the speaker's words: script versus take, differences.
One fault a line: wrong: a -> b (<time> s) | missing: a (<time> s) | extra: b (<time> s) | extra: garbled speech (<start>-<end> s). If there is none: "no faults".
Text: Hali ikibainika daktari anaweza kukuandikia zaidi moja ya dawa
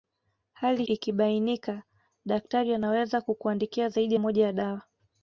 no faults